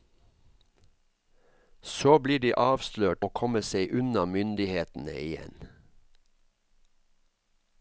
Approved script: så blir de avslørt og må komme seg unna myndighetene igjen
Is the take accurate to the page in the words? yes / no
no